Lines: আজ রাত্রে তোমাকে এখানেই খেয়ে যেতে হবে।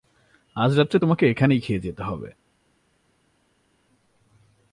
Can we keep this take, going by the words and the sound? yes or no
yes